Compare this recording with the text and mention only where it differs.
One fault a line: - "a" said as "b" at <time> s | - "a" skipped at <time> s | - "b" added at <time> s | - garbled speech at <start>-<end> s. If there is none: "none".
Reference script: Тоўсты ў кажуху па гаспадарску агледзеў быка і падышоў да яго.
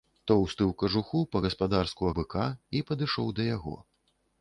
- "агледзеў" skipped at 2.1 s